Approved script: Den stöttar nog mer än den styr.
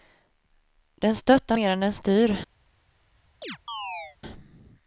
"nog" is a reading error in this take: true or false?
true